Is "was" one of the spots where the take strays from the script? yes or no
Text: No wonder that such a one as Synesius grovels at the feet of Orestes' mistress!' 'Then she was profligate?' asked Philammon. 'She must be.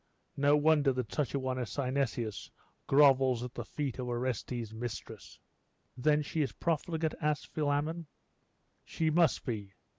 yes